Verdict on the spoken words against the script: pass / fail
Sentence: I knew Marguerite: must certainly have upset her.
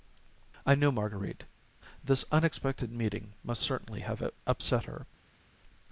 fail